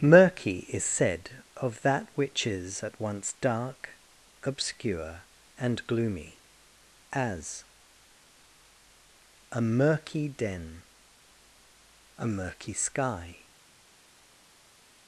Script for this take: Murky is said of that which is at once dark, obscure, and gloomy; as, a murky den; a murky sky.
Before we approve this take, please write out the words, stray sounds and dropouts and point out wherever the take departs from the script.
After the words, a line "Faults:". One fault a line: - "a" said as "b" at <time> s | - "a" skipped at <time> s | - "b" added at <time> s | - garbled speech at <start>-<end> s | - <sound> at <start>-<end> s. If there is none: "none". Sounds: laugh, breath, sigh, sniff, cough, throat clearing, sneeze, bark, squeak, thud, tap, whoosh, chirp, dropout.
Murky is said of that which is at once dark, obscure, and gloomy; as, a murky den; a murky sky.
Faults:
none